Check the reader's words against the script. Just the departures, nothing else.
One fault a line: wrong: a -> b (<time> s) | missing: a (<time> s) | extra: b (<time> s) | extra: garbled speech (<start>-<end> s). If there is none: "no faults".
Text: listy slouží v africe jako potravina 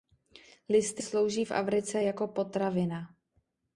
no faults